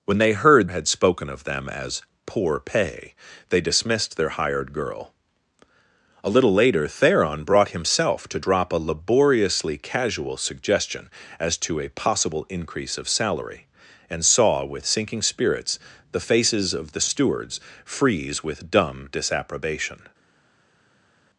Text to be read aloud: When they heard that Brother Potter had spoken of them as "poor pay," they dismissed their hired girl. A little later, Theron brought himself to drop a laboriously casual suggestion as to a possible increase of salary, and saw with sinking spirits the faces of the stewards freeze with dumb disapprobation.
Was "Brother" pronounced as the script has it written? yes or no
no